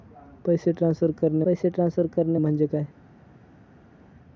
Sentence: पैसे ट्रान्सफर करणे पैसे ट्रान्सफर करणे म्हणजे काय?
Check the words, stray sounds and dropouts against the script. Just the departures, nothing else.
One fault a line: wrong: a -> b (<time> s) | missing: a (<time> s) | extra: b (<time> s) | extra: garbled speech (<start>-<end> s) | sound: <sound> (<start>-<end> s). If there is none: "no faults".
no faults